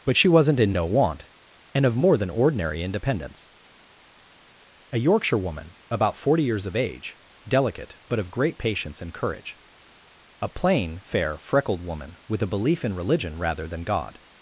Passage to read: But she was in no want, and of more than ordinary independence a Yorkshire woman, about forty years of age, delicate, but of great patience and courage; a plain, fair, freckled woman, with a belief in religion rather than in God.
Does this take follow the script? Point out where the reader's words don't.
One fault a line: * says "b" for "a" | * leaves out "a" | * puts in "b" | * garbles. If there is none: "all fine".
* says "wasn't" for "was"
* leaves out "in"